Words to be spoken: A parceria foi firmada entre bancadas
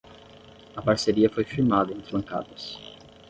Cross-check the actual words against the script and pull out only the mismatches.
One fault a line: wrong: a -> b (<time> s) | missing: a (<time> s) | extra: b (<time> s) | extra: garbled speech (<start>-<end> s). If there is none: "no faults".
no faults